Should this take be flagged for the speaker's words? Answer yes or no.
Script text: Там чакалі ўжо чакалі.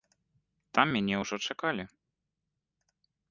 yes